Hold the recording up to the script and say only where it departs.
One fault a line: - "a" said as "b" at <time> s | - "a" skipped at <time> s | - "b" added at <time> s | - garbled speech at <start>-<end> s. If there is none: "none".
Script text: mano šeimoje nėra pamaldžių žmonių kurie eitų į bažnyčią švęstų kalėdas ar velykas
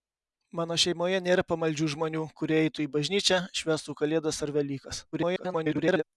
- garbled speech at 5.1-6.0 s